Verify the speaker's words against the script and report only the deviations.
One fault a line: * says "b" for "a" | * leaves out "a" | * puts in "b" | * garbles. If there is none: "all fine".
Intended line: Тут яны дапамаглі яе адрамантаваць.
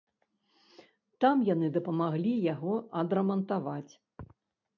* says "Там" for "Тут"
* says "яго" for "яе"